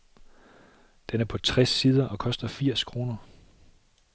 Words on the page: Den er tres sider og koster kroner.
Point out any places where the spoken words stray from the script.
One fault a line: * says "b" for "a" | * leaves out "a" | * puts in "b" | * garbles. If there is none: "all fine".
* puts in "på"
* puts in "firs"